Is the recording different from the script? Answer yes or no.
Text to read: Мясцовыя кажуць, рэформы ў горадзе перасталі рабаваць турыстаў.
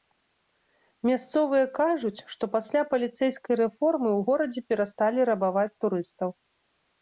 yes